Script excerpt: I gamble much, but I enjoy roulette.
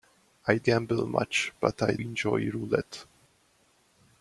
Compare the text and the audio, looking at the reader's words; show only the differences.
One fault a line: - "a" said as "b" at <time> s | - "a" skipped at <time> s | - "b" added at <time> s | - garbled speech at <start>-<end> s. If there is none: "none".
none